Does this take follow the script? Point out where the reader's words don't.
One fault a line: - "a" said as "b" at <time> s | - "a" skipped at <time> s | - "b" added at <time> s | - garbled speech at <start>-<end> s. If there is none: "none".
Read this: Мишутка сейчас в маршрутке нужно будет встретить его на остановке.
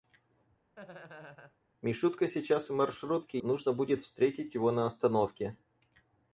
none